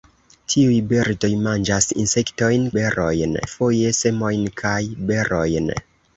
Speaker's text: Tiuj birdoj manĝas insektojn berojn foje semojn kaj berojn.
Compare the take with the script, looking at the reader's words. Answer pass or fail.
pass